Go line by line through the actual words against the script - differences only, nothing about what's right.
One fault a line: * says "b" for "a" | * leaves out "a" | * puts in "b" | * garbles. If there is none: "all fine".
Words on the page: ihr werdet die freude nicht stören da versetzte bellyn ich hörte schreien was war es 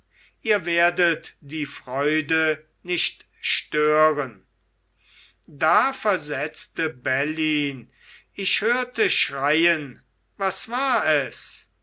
all fine